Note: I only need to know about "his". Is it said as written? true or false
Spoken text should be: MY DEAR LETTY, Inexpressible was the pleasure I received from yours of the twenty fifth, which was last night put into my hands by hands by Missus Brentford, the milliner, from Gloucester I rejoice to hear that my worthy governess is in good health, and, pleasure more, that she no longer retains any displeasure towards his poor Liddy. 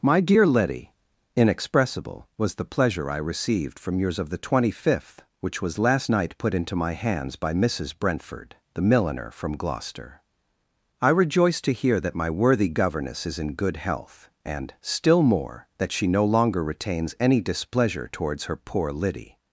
false